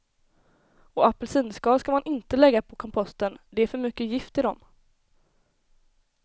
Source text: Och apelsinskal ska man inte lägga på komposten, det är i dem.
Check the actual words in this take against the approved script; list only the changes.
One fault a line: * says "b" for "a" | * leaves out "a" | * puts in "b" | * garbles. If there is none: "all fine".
* puts in "för mycket gift"